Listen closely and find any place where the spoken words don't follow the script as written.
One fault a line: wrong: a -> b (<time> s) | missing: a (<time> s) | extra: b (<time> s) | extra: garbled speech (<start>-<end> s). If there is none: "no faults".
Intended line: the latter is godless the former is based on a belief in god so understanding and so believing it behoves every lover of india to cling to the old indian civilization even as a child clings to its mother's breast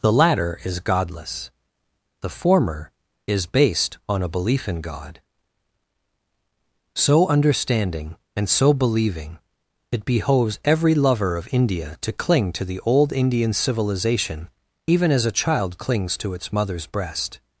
no faults